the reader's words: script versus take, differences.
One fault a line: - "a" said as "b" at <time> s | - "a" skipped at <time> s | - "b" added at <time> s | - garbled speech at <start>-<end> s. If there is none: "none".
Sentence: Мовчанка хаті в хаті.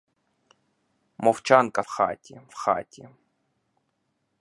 none